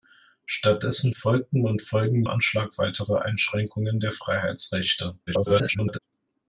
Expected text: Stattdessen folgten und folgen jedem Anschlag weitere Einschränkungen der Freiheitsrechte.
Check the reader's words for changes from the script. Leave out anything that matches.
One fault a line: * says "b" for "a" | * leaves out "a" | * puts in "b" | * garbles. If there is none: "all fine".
* leaves out "jedem"
* garbles